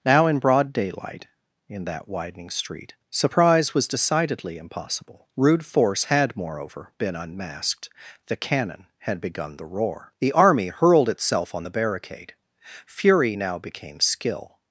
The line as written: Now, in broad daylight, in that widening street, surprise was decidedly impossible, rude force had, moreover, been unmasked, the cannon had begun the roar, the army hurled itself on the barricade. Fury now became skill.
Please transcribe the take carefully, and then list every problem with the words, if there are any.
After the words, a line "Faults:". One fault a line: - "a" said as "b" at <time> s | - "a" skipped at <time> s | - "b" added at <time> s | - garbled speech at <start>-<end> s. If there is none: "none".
Now, in broad daylight, in that widening street, surprise was decidedly impossible, rude force had, moreover, been unmasked, the cannon had begun the roar, the army hurled itself on the barricade. Fury now became skill.
Faults:
none